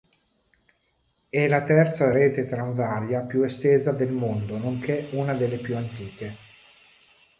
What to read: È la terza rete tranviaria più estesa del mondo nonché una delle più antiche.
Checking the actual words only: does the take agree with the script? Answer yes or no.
yes